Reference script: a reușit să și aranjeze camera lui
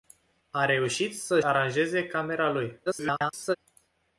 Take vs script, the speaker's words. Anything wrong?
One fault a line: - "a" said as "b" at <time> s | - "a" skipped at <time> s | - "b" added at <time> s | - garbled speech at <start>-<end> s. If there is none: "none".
- "și" skipped at 1.4 s
- garbled speech at 2.9-3.6 s